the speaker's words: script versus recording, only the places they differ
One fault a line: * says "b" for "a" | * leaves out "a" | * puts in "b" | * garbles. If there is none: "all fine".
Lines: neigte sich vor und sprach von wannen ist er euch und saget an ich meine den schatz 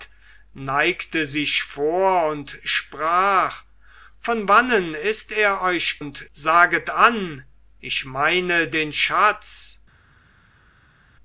all fine